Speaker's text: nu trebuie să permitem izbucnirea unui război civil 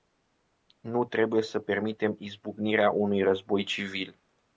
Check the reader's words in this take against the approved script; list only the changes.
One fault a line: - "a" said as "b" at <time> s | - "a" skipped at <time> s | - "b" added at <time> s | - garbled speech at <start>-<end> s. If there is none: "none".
none